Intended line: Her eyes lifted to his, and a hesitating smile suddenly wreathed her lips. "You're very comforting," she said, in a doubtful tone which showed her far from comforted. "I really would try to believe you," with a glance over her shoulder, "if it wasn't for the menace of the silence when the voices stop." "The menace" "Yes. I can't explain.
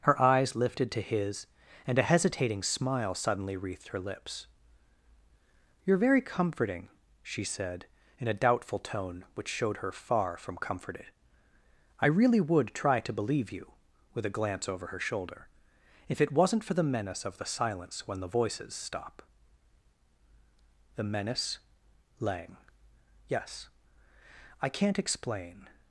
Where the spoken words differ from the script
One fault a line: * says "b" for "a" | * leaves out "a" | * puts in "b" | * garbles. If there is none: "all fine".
* puts in "lang"